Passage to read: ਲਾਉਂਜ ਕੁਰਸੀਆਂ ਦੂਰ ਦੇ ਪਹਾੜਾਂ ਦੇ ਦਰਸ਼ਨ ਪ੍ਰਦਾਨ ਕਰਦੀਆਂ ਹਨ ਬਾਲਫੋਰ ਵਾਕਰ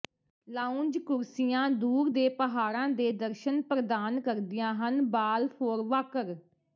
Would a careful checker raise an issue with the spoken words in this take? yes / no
no